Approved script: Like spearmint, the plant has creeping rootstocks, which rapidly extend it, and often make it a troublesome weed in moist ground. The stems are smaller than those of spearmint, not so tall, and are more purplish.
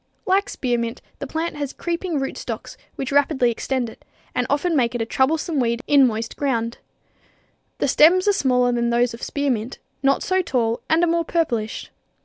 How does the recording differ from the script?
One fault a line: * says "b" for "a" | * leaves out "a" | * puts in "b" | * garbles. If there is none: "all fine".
all fine